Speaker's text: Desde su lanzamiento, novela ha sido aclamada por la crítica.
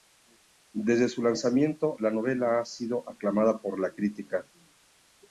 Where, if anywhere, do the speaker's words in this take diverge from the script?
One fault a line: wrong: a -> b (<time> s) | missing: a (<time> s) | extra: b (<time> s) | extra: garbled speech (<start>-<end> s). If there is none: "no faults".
extra: la (2.0 s)